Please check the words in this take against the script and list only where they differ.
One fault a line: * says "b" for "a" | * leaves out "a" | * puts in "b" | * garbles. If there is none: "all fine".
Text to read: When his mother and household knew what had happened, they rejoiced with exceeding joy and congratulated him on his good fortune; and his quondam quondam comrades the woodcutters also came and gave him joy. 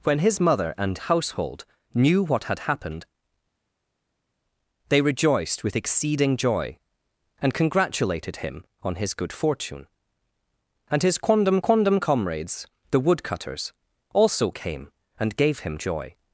all fine